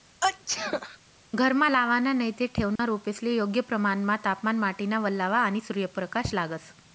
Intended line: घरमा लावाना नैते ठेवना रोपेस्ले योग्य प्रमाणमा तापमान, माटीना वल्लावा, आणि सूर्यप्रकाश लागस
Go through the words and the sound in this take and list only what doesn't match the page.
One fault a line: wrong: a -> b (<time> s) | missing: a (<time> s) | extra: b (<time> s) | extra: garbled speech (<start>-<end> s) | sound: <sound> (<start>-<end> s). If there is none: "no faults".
sound: sneeze (0.2-1.0 s)
sound: dropout (2.8-2.8 s)